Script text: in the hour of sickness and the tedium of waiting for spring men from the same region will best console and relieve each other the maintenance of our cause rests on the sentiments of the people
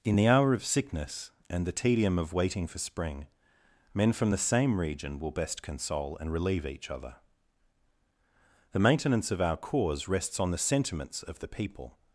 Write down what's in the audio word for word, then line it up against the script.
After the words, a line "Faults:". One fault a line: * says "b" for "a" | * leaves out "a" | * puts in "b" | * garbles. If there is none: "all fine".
in the hour of sickness and the tedium of waiting for spring men from the same region will best console and relieve each other the maintenance of our cause rests on the sentiments of the people
Faults:
all fine